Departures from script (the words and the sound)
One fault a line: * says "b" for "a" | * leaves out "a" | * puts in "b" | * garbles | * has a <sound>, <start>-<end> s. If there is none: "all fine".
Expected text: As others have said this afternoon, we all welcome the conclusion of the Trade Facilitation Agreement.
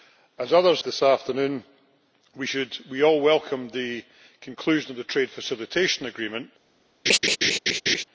* leaves out "have said"
* has a laugh, 7.1-8.0 s